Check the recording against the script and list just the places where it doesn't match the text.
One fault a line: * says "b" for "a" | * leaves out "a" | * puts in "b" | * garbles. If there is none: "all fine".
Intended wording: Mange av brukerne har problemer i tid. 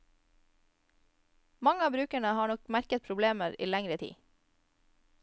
* puts in "nok merket"
* puts in "lengre"